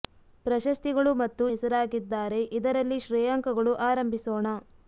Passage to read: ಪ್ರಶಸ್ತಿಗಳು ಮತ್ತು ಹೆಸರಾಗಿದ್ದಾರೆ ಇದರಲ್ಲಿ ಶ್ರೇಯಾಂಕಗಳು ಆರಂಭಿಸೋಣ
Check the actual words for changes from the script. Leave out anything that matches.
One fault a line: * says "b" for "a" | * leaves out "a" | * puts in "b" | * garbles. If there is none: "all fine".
all fine